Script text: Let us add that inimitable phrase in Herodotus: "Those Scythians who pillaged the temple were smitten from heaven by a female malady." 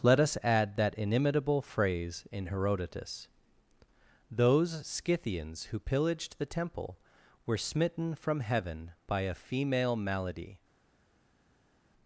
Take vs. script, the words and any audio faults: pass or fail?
pass